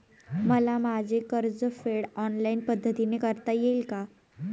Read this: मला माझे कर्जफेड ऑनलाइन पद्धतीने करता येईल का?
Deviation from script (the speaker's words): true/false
false